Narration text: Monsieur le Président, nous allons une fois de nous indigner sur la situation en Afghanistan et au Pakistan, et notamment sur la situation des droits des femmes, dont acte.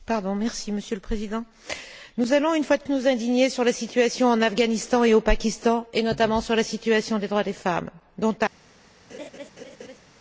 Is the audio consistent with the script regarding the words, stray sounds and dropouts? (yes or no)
no